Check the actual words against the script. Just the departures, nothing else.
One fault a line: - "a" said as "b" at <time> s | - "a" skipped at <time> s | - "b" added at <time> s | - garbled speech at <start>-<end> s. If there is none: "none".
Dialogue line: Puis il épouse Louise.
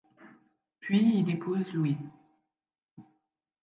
none